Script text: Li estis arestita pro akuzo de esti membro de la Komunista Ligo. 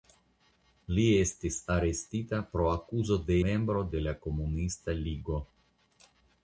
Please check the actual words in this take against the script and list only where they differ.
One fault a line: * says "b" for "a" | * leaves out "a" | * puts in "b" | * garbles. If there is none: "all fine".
* leaves out "esti"